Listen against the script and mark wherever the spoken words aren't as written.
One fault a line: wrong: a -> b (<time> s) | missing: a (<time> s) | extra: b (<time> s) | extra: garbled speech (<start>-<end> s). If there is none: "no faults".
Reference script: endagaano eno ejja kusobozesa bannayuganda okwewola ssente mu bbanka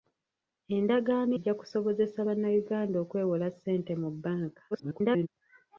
missing: eno (1.3 s)
extra: garbled speech (4.7-5.3 s)